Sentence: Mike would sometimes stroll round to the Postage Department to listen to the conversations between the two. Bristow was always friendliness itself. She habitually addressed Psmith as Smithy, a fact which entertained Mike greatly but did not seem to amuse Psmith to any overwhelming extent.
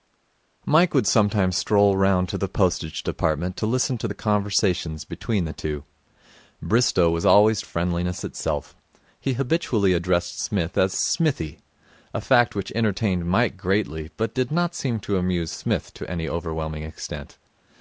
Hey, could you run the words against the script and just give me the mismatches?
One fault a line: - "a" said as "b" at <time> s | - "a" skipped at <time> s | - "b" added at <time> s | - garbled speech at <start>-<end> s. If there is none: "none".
- "She" said as "He" at 9.2 s